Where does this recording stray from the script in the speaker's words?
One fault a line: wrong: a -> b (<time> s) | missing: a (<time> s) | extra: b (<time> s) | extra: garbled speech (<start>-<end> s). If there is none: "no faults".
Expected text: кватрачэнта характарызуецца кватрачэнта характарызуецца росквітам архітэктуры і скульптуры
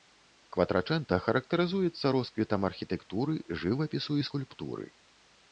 missing: кватрачэнта характарызуецца (2.1 s)
extra: жывапісу (3.7 s)